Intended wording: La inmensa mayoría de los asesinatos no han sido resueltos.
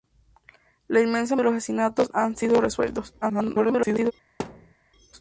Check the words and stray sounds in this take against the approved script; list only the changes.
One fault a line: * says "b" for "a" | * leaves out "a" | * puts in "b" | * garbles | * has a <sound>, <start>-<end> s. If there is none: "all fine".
* leaves out "no"
* garbles
* has a thud, 4.4-4.7 s